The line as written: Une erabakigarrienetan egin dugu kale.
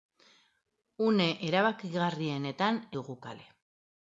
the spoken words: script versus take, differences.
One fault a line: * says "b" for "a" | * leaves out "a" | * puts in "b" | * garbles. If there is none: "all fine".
* leaves out "egin"